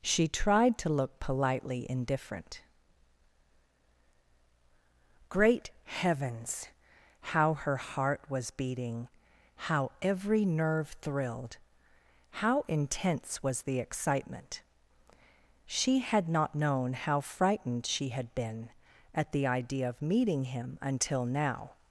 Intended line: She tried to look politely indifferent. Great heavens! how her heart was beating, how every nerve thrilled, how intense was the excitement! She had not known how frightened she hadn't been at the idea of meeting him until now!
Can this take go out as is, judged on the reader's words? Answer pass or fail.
fail